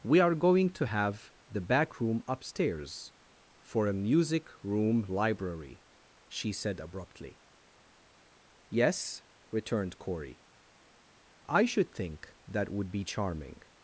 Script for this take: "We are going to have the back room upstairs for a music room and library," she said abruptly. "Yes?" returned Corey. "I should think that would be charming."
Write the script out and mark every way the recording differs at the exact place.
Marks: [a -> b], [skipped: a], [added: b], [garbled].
"We are going to have the back room upstairs for a music room [skipped: and] library," she said abruptly. "Yes?" returned Corey. "I should think that would be charming."